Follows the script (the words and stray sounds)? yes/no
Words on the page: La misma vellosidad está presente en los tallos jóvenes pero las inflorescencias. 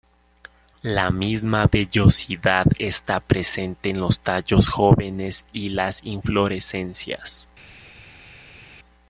no